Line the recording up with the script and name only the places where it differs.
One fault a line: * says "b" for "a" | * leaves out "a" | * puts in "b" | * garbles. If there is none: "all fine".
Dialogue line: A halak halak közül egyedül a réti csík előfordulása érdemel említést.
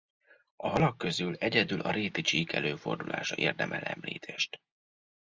* leaves out "halak"